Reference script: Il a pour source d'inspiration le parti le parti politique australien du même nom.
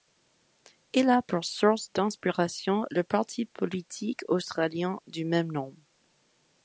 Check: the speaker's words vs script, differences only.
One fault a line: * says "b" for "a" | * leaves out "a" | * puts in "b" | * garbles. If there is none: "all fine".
* leaves out "le parti"